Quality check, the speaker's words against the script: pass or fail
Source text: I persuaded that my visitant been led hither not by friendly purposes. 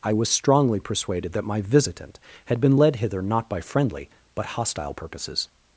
fail